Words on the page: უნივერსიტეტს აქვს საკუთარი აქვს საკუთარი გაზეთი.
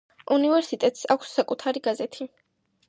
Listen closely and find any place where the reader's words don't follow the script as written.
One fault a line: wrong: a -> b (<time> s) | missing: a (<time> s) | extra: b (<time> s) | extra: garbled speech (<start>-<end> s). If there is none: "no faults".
missing: აქვს საკუთარი (1.9 s)